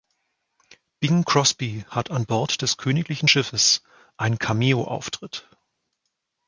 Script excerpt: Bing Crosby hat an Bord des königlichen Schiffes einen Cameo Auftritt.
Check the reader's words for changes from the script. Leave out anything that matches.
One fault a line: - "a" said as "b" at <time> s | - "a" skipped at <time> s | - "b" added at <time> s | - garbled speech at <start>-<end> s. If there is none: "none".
none